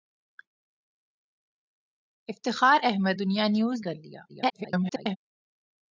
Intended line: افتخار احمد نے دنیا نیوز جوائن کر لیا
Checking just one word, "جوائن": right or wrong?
wrong